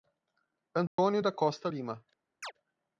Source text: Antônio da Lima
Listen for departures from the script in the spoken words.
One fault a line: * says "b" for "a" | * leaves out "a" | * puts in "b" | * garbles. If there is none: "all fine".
* puts in "Costa"